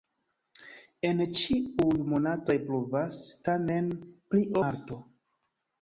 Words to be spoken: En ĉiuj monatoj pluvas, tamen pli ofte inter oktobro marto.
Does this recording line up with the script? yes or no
no